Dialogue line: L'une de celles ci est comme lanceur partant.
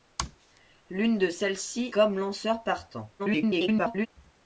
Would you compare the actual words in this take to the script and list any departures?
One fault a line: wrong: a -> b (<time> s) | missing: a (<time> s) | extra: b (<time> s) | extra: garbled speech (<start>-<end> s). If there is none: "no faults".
missing: est (1.9 s)
extra: garbled speech (3.2-4.1 s)